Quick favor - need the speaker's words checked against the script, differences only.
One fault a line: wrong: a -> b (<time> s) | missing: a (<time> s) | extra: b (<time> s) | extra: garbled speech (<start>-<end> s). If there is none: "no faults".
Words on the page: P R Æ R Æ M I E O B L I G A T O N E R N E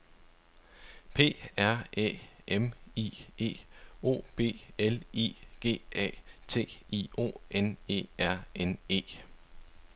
missing: R Æ (2.2 s)
extra: I (6.9 s)